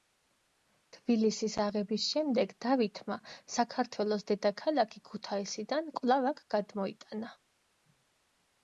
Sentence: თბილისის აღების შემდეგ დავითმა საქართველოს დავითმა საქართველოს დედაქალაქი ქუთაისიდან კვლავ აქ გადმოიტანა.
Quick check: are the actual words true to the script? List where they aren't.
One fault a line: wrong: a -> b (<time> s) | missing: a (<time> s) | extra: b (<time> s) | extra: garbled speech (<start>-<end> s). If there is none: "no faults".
missing: დავითმა საქართველოს (4.3 s)